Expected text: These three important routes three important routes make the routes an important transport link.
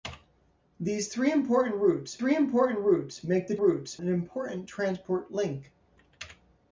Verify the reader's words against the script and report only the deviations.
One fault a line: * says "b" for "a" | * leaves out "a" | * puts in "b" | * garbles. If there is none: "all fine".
all fine